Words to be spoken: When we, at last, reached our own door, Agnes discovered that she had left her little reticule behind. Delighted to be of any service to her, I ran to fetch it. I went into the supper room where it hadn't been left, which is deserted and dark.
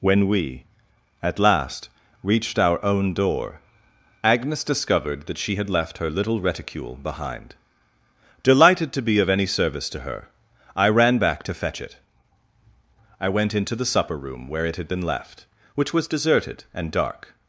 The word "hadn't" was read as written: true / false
false